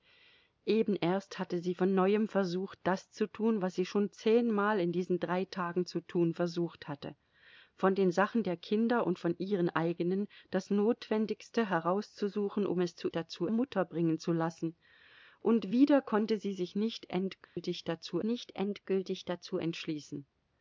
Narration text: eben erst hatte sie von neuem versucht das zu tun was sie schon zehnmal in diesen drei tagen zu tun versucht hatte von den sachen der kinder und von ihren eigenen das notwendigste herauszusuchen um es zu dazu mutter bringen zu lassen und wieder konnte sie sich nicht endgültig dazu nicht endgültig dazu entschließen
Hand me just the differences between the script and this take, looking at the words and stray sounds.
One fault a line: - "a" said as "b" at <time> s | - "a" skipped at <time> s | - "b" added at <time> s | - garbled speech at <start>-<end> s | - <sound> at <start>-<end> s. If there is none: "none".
- dropout at 17.4-17.6 s